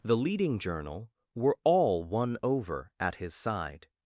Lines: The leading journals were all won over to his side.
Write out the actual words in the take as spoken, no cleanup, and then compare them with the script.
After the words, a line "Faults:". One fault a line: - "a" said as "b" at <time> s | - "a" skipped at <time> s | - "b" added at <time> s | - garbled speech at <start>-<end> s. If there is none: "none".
The leading journal were all won over at his side.
Faults:
- "journals" said as "journal" at 0.6 s
- "to" said as "at" at 3.0 s